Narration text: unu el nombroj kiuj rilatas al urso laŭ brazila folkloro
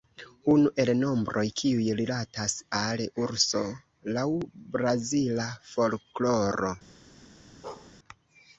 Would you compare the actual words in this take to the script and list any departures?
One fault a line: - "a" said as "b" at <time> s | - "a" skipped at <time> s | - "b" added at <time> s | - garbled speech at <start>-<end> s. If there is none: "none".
none